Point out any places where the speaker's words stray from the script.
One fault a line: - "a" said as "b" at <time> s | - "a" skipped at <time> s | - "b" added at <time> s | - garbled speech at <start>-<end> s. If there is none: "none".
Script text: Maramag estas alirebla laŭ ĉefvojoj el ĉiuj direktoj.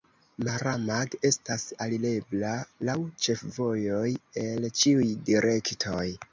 none